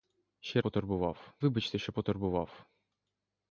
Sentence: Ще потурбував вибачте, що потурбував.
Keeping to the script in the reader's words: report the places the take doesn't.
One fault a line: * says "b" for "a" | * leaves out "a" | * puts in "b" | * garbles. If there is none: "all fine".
all fine